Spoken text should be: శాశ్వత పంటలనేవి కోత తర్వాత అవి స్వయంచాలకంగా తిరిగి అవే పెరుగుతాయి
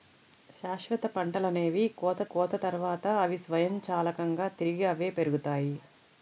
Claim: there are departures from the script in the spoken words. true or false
true